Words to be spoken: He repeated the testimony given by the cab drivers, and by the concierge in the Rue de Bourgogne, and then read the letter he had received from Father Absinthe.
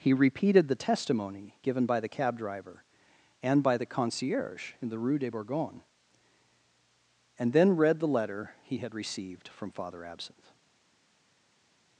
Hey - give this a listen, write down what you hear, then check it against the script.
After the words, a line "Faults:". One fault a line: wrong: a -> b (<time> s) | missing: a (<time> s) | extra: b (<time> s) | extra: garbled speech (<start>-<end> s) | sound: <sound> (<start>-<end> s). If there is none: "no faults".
He repeated the testimony given by the cab driver, and by the concierge in the Rue de Bourgogne, and then read the letter he had received from Father Absinthe.
Faults:
wrong: drivers -> driver (2.4 s)